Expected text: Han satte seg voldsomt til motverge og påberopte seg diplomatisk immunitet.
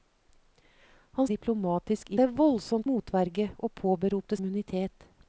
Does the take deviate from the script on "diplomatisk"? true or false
true